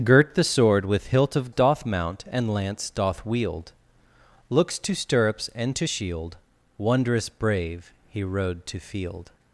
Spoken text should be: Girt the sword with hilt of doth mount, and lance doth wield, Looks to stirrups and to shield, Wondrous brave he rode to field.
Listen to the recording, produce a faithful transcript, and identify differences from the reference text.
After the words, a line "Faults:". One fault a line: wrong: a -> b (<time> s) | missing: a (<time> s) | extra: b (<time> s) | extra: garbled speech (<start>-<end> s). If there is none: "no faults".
Girt the sword with hilt of doth mount, and lance doth wield, Looks to stirrups and to shield, Wondrous brave he rode to field.
Faults:
no faults